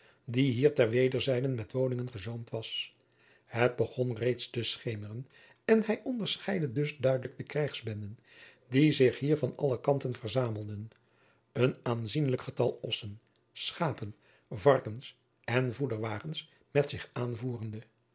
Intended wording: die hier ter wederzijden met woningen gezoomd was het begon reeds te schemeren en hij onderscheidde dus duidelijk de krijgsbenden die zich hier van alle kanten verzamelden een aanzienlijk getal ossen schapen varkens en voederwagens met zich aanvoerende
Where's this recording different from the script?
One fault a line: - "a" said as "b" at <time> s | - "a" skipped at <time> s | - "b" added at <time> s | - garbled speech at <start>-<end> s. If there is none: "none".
none